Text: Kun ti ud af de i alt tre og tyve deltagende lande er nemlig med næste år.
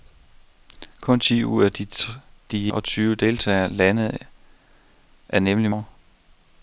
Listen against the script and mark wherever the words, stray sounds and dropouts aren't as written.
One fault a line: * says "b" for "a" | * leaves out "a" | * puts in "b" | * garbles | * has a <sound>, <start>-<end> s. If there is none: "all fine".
* leaves out "af"
* leaves out "alt tre"
* leaves out "med næste"